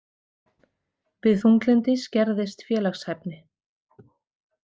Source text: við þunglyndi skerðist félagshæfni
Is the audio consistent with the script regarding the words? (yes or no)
yes